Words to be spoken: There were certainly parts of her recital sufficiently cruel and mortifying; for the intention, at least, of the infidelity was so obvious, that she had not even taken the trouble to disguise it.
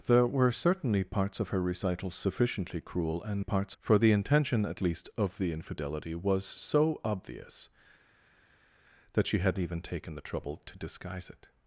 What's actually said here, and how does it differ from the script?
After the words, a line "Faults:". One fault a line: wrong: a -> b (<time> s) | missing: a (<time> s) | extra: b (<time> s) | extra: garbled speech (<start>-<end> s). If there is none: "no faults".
There were certainly parts of her recital sufficiently cruel and parts; for the intention, at least, of the infidelity was so obvious, that she had even taken the trouble to disguise it.
Faults:
wrong: mortifying -> parts (3.4 s)
missing: not (9.6 s)